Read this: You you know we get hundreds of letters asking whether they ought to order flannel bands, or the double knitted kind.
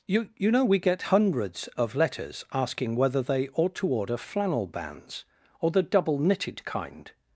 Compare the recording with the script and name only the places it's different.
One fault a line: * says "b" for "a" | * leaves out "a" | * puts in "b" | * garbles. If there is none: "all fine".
all fine